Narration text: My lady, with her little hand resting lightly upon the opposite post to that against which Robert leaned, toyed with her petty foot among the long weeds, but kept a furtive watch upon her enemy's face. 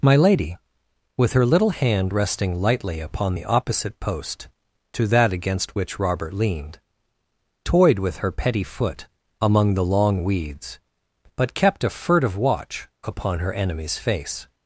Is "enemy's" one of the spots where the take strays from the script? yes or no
no